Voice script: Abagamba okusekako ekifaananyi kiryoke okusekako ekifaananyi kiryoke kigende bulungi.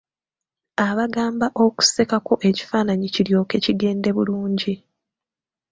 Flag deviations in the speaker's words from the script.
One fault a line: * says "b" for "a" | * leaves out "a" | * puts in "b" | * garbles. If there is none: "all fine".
* leaves out "okusekako ekifaananyi kiryoke"